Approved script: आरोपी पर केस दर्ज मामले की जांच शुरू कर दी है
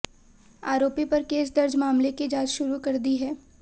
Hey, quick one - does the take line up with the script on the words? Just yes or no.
yes